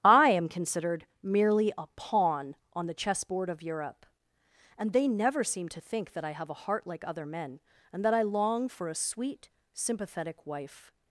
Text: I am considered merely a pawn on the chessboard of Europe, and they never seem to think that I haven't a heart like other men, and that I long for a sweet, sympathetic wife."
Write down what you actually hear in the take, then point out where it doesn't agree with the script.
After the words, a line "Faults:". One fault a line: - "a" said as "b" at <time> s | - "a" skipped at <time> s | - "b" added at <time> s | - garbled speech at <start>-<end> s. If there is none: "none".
I am considered merely a pawn on the chessboard of Europe, and they never seem to think that I have a heart like other men, and that I long for a sweet, sympathetic wife."
Faults:
- "haven't" said as "have" at 6.3 s